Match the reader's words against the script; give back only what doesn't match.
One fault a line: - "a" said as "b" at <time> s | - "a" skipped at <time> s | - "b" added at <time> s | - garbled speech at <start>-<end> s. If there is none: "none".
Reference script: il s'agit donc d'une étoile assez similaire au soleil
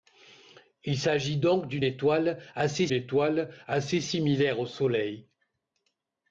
- "étoile assez" added at 2.9 s